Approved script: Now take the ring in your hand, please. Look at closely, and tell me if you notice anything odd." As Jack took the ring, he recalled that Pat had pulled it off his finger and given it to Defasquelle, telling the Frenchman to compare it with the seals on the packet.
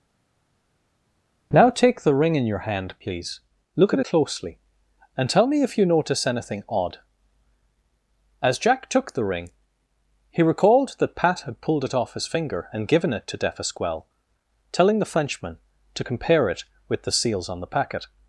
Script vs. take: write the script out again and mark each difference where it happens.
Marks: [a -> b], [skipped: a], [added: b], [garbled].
Now take the ring in your hand, please. Look at closely, and tell me if you notice anything odd." As Jack took the ring, he recalled that Pat had pulled it off his finger and given it to Defasquelle, telling the Frenchman to compare it with the seals on the packet.